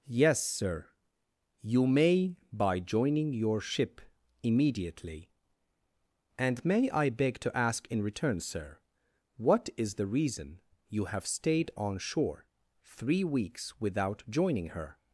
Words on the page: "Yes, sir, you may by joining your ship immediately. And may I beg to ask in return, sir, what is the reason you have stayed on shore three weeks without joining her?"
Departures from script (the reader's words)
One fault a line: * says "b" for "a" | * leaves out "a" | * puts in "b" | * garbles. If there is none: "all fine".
all fine